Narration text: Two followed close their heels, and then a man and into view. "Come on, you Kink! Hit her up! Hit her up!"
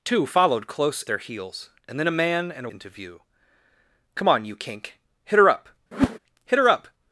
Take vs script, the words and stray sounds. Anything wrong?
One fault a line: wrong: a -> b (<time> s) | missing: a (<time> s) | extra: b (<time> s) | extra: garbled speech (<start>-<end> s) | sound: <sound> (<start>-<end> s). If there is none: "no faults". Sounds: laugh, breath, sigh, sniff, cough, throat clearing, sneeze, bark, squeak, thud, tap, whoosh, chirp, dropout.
sound: whoosh (5.9-6.2 s)